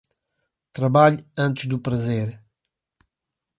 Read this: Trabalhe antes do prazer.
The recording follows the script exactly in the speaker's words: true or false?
true